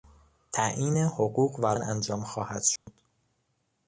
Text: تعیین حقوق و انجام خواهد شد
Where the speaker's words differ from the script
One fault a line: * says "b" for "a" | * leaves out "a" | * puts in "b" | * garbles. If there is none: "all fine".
all fine